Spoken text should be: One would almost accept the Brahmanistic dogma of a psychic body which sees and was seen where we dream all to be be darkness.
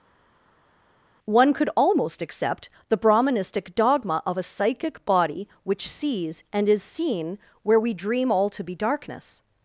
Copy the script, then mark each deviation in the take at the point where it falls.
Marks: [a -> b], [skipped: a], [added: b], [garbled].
One [would -> could] almost accept the Brahmanistic dogma of a psychic body which sees and [was -> is] seen where we dream all to be [skipped: be] darkness.